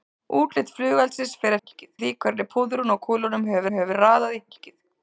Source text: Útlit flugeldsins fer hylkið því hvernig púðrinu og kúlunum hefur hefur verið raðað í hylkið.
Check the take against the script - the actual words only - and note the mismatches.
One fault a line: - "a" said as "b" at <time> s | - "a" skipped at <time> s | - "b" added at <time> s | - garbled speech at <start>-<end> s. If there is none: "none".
none